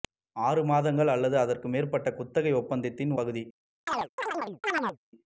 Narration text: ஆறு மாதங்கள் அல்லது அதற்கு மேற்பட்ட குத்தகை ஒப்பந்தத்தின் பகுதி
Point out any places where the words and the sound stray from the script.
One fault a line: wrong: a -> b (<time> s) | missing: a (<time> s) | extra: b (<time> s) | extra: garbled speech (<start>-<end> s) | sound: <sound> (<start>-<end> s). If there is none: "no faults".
sound: chirp (3.9-5.0 s)